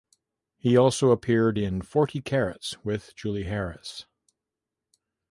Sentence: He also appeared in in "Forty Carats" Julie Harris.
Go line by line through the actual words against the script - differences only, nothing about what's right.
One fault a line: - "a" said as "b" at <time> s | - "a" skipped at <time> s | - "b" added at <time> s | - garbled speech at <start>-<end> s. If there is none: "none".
- "in" skipped at 1.8 s
- "with" added at 2.9 s